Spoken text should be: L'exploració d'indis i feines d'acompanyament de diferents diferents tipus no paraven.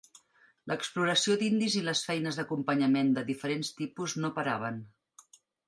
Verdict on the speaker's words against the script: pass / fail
fail